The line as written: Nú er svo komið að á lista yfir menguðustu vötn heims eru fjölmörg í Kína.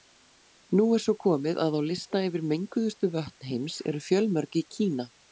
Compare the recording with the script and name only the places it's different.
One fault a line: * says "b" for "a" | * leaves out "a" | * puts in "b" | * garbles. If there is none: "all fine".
all fine